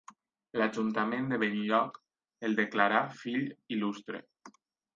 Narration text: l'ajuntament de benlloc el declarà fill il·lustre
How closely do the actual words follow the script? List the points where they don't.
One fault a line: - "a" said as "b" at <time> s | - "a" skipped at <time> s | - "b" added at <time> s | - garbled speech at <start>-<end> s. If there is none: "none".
none